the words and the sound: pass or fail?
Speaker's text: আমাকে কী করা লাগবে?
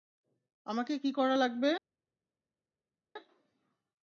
pass